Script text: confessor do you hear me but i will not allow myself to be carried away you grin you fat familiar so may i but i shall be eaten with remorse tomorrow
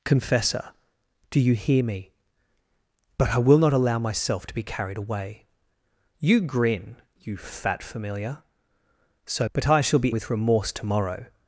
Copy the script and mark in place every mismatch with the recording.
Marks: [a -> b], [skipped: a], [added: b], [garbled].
confessor do you hear me but i will not allow myself to be carried away you grin you fat familiar so [skipped: may i] but i shall be [skipped: eaten] with remorse tomorrow